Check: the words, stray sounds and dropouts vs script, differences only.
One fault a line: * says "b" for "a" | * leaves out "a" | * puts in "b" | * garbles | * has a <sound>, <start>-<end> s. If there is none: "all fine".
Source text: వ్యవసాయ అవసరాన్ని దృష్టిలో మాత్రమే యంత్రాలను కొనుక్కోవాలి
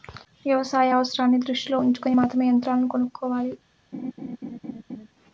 * puts in "ఉంచుకొని"
* has a laugh, 3.9-5.1 s